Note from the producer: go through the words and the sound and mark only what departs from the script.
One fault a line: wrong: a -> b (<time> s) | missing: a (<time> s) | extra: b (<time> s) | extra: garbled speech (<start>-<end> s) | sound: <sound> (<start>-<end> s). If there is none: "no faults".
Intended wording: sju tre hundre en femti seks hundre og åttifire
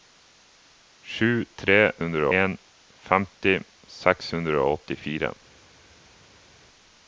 no faults